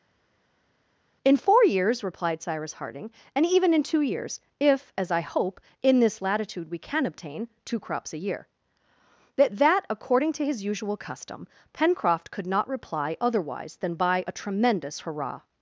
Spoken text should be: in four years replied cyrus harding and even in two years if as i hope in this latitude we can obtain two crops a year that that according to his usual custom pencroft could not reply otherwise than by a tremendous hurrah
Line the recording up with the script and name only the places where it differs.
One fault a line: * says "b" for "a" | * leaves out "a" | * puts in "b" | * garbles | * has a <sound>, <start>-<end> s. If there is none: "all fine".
all fine